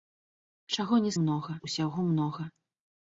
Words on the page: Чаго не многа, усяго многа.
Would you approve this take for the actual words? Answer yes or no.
yes